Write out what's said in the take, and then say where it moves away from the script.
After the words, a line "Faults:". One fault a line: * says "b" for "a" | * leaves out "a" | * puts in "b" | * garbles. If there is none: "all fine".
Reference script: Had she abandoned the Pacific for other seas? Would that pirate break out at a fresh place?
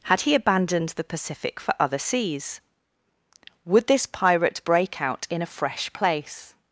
Had he abandoned the Pacific for other seas? Would this pirate break out in a fresh place?
Faults:
* says "he" for "she"
* says "this" for "that"
* says "in" for "at"